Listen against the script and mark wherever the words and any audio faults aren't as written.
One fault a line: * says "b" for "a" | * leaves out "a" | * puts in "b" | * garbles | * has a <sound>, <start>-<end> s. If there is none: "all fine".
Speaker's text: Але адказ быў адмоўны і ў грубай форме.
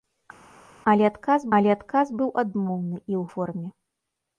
* puts in "але адказ"
* leaves out "грубай"